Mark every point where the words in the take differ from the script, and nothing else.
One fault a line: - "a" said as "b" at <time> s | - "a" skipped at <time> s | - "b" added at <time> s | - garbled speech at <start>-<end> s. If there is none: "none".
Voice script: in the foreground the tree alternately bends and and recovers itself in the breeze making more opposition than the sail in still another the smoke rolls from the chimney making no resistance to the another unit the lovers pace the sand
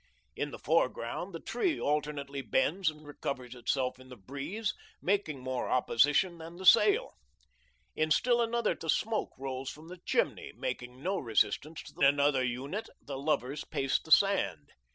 none